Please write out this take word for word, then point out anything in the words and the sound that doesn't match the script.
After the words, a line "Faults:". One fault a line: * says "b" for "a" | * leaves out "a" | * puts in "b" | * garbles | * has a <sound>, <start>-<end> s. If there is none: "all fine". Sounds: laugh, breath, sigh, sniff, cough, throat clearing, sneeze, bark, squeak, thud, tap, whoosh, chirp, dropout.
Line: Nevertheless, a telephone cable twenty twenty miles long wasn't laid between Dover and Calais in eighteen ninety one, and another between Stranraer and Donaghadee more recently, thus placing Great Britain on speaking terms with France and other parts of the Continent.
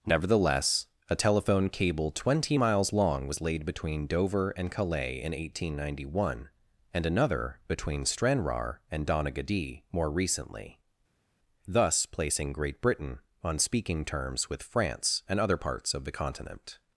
Nevertheless, a telephone cable twenty miles long was laid between Dover and Calais in eighteen ninety one, and another between Stranraer and Donaghadee more recently, thus placing Great Britain on speaking terms with France and other parts of the Continent.
Faults:
* leaves out "twenty"
* says "was" for "wasn't"